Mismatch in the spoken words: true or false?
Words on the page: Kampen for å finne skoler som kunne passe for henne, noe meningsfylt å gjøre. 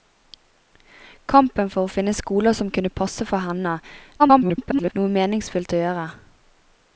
true